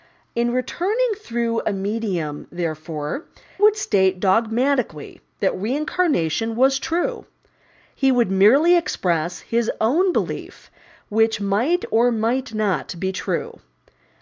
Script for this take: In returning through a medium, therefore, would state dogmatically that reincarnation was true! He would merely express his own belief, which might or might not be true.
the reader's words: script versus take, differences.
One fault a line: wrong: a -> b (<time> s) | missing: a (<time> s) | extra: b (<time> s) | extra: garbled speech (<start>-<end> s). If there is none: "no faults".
no faults